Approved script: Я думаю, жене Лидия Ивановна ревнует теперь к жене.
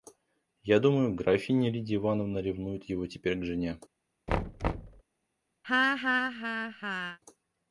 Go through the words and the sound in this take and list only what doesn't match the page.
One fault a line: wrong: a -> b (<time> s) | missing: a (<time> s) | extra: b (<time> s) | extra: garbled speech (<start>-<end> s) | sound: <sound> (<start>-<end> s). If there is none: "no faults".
wrong: жене -> графиня (1.1 s)
extra: его (2.9 s)
sound: thud (4.3-5.0 s)
sound: laugh (5.6-7.2 s)